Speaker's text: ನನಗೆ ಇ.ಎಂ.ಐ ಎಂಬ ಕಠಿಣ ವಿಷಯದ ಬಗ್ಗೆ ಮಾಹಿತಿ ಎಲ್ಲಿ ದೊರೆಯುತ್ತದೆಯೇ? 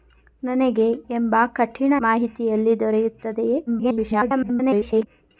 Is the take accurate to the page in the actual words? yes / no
no